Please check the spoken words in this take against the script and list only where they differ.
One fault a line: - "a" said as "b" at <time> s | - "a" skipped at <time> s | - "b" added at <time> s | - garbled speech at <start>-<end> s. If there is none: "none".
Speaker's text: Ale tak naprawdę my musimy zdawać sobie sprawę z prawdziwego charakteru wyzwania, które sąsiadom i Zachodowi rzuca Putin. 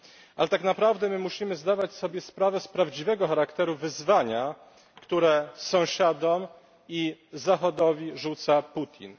none